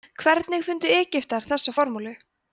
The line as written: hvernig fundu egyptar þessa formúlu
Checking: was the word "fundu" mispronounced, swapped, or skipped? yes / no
no